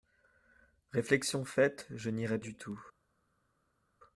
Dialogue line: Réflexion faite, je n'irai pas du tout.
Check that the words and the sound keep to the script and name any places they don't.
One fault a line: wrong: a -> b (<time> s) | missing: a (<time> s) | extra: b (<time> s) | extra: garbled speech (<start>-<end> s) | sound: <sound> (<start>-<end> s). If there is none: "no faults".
missing: pas (2.4 s)